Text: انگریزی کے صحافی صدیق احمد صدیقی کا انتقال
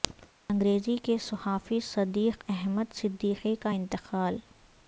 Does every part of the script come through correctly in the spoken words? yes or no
yes